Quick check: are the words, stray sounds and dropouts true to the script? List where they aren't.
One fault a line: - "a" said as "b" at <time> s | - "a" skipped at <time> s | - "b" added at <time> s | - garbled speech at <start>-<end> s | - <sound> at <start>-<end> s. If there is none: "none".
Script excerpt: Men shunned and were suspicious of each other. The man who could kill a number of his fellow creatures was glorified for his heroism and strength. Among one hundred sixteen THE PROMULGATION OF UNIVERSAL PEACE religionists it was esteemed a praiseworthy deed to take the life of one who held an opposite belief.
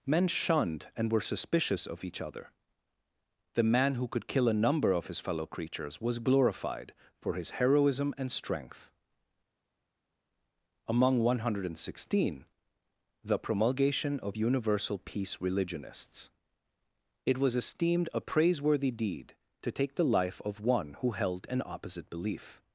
none